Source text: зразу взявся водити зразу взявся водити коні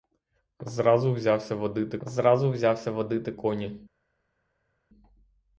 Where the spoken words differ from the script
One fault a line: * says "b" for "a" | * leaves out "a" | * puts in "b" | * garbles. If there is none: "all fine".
all fine